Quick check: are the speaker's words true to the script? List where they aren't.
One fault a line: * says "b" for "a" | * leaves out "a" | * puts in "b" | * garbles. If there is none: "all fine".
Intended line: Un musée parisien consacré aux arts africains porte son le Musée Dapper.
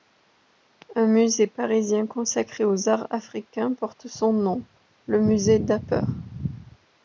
* puts in "nom"